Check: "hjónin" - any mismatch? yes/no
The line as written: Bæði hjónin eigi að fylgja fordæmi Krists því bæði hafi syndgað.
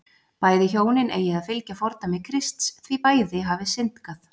no